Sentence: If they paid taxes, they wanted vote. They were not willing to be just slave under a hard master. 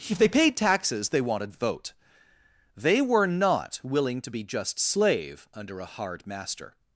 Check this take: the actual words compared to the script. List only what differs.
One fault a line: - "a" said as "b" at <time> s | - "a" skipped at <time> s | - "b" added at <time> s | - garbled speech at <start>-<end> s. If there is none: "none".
none